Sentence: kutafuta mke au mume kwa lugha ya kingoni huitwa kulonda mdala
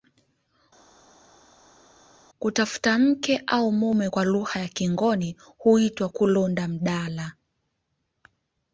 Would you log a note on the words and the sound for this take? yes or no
no